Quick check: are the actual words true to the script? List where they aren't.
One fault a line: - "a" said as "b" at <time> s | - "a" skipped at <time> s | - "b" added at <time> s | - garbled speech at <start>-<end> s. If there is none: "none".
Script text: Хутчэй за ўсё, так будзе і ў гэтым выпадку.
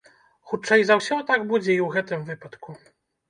none